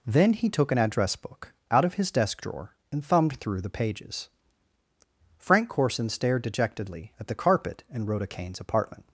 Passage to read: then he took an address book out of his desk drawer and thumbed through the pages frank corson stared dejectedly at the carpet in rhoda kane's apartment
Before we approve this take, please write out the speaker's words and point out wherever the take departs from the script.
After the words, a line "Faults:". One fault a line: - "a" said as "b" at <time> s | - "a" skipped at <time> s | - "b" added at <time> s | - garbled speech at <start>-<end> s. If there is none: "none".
then he took an address book out of his desk drawer and thumbed through the pages frank corson stared dejectedly at the carpet in rhoda kane's apartment
Faults:
none